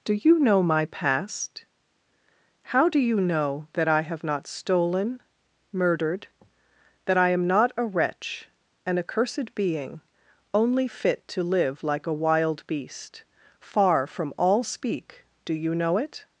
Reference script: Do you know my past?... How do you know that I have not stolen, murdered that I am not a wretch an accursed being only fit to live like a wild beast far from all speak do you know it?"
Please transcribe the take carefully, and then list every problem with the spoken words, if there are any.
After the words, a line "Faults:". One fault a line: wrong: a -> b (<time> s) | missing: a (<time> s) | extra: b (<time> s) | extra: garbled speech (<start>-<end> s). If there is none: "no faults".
Do you know my past?... How do you know that I have not stolen, murdered that I am not a wretch an accursed being only fit to live like a wild beast far from all speak do you know it?"
Faults:
no faults